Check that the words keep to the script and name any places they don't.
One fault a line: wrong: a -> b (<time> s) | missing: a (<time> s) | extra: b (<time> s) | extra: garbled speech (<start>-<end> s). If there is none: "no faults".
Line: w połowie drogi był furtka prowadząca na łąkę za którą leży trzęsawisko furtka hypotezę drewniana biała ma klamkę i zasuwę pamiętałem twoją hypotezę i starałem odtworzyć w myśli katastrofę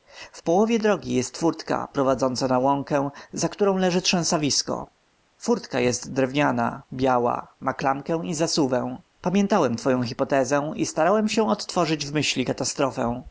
wrong: był -> jest (1.1 s)
wrong: hypotezę -> jest (5.8 s)
extra: się (11.3 s)